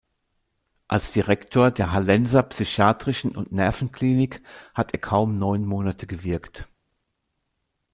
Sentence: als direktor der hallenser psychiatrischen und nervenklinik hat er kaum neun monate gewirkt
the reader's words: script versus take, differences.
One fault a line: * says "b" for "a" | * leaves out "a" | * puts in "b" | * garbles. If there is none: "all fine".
all fine